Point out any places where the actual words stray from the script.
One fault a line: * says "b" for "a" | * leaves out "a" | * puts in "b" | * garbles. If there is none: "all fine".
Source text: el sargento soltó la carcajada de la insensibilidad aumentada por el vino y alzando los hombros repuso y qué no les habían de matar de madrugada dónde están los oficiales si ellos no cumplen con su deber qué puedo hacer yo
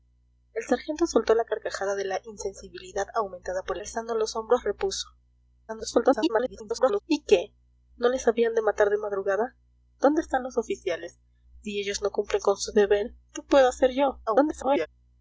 * leaves out "el vino y"
* garbles
* garbles